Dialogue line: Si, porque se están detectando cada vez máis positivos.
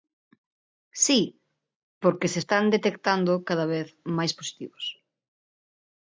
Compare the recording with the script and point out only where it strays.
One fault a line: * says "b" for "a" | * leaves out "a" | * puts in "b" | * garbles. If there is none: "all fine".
all fine